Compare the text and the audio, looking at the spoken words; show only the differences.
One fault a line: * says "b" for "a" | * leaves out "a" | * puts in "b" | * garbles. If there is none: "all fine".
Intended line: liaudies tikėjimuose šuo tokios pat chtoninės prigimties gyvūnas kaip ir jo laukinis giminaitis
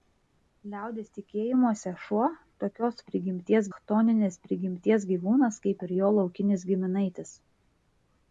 * says "prigimties" for "pat"